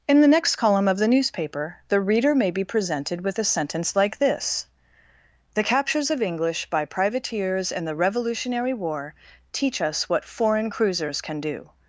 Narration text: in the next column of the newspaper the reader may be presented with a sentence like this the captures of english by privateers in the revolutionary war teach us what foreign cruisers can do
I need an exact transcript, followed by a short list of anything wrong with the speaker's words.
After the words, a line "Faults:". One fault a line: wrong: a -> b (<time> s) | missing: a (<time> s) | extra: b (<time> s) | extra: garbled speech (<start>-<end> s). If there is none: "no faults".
in the next column of the newspaper the reader may be presented with a sentence like this the captures of english by privateers in the revolutionary war teach us what foreign cruisers can do
Faults:
no faults